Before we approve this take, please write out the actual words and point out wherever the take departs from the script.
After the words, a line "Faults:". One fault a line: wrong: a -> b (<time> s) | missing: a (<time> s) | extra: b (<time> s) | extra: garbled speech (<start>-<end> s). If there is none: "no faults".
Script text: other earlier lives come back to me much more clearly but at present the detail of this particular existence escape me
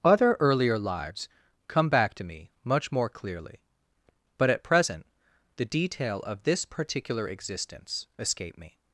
other earlier lives come back to me much more clearly but at present the detail of this particular existence escape me
Faults:
no faults